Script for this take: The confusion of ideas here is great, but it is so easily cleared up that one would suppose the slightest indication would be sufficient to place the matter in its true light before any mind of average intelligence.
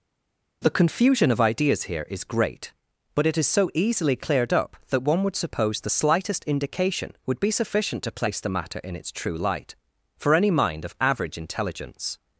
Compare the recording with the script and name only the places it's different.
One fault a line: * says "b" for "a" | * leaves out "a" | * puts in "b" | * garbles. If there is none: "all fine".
* says "for" for "before"